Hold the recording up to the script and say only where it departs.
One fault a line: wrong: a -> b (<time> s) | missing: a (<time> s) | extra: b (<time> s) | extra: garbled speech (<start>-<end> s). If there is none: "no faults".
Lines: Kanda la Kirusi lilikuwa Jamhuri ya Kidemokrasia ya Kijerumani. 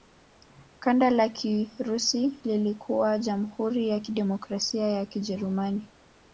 no faults